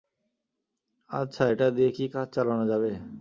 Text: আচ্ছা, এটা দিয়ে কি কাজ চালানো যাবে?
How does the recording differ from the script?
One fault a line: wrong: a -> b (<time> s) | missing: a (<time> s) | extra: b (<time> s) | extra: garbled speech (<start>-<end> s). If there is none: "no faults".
no faults